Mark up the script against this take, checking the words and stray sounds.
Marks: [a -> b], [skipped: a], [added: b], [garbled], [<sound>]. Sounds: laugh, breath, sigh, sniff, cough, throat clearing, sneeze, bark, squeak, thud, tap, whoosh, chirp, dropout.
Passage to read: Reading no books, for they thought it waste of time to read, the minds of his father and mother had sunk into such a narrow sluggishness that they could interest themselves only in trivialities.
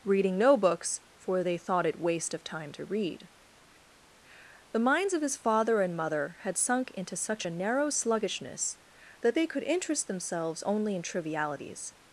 Reading no books, for they thought it waste of time to read, the minds of his father and mother had sunk into such a narrow sluggishness that they could interest themselves only in trivialities.